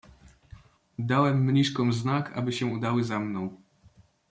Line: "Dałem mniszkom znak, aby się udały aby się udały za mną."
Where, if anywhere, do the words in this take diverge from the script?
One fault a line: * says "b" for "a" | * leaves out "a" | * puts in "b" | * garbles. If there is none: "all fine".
* leaves out "aby się udały"